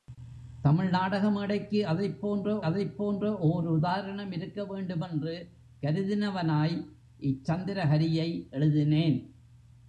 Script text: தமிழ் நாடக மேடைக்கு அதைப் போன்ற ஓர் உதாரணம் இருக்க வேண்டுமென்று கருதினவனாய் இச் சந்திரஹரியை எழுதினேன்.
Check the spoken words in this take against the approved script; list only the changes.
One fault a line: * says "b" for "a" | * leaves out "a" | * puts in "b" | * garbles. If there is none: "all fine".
* puts in "அதைப் போன்ற"